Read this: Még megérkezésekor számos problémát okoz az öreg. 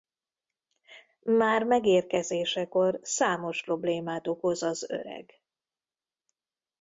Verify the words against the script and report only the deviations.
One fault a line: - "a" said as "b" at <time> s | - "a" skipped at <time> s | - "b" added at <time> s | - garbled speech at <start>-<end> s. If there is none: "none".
- "Még" said as "Már" at 1.2 s